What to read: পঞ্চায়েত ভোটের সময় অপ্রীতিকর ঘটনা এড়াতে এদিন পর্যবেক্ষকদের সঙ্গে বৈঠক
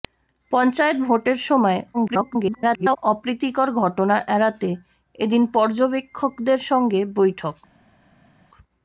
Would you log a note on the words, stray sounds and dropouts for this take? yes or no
yes